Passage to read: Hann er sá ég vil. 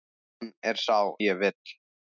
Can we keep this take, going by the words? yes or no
yes